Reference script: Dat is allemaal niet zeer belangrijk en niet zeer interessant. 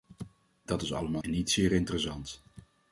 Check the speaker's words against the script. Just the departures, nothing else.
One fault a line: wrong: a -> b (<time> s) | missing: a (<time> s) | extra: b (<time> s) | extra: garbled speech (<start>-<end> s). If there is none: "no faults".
missing: niet zeer belangrijk (1.2 s)